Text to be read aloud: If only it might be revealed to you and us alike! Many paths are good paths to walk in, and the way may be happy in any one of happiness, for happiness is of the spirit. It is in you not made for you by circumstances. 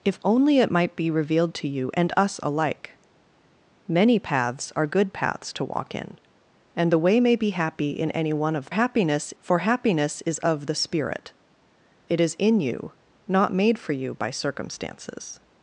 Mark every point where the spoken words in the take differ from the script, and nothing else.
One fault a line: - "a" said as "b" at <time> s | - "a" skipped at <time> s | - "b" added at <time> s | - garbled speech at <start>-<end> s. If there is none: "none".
none